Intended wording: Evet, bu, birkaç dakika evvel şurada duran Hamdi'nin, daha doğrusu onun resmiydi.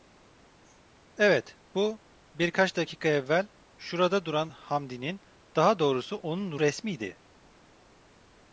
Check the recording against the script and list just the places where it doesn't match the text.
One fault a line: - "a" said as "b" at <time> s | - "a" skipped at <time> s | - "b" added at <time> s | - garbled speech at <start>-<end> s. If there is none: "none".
none